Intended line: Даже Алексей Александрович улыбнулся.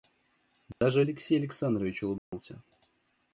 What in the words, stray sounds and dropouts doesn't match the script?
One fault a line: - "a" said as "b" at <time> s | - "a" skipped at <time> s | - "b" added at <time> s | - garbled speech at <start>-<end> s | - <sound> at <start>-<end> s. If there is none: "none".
- dropout at 0.7-0.8 s
- dropout at 2.2-2.3 s